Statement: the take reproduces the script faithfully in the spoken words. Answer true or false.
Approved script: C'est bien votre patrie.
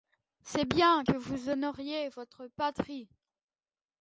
false